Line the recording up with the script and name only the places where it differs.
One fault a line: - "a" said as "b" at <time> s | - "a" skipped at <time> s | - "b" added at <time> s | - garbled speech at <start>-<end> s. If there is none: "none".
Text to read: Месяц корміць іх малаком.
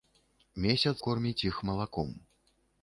none